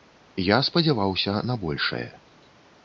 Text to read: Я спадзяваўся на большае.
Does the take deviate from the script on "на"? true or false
false